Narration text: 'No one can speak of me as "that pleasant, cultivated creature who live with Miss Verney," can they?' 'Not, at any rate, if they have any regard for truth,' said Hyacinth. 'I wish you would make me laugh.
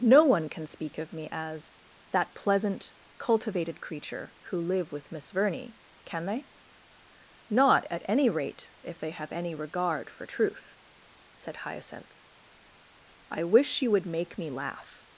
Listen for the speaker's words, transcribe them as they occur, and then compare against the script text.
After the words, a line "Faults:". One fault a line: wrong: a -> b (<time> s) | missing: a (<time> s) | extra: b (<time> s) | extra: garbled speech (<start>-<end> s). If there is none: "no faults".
'No one can speak of me as "that pleasant, cultivated creature who live with Miss Verney," can they?' 'Not, at any rate, if they have any regard for truth,' said Hyacinth. 'I wish you would make me laugh.
Faults:
no faults